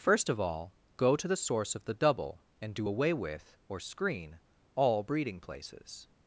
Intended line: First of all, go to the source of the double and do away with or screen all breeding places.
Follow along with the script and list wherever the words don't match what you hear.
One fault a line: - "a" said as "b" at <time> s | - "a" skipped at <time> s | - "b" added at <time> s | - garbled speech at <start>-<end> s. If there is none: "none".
none